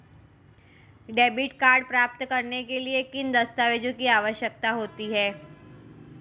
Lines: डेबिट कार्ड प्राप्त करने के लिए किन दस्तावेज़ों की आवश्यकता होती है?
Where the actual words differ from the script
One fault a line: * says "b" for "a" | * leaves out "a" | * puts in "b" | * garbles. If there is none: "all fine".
all fine